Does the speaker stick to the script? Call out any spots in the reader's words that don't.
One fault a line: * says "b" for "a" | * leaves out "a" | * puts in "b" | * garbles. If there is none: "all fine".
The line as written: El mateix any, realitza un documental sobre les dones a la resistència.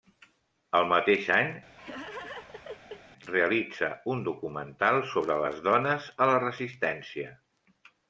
all fine